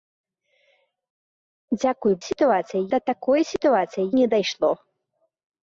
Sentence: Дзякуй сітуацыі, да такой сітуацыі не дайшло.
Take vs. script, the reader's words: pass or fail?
pass